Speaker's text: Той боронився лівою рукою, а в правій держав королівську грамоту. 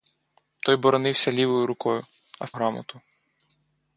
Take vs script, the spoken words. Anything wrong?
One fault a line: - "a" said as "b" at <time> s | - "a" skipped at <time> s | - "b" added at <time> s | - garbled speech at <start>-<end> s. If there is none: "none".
- "правій держав королівську" skipped at 2.5 s